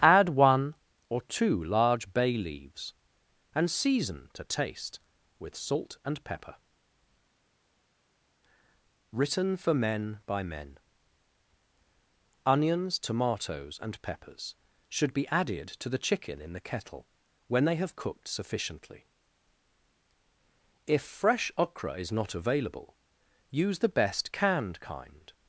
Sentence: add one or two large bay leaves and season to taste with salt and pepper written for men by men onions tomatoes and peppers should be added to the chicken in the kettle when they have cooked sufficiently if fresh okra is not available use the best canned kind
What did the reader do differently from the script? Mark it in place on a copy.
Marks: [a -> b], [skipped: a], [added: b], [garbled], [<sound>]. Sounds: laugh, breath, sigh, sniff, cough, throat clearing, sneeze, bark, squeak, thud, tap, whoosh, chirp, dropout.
add one or two large bay leaves and season to taste with salt and pepper written for men by men onions tomatoes and peppers should be added to the chicken in the kettle when they have cooked sufficiently if fresh okra is not available use the best canned kind